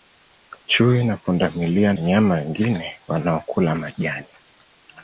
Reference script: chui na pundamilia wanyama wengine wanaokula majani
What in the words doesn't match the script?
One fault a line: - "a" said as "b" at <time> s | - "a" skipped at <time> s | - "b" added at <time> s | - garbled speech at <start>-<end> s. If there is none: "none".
none